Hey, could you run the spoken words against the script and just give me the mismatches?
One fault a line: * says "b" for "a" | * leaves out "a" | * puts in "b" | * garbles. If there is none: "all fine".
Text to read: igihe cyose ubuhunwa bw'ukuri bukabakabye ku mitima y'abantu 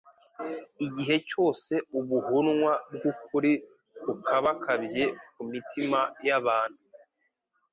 all fine